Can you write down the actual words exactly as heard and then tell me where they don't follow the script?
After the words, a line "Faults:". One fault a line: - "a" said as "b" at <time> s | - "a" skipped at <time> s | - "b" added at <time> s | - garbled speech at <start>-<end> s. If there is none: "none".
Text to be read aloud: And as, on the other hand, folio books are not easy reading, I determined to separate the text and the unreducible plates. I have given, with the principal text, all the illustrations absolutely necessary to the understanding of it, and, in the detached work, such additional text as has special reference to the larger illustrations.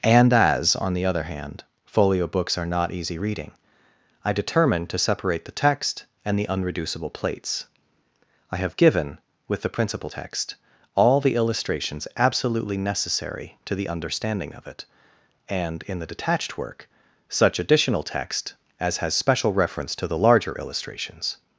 And as, on the other hand, folio books are not easy reading, I determined to separate the text and the unreducible plates. I have given, with the principal text, all the illustrations absolutely necessary to the understanding of it, and, in the detached work, such additional text as has special reference to the larger illustrations.
Faults:
none